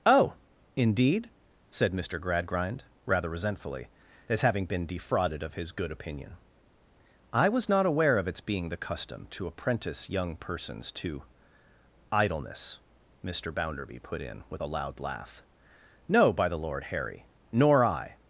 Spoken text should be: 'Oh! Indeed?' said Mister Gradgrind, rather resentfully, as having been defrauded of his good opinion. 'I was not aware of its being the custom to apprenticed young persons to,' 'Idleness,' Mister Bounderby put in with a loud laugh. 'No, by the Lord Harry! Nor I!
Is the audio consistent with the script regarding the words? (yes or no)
no